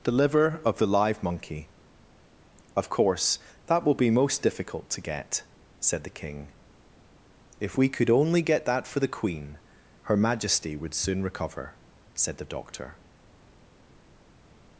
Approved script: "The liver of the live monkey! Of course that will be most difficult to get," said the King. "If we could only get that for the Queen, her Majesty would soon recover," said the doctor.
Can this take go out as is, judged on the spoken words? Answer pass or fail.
pass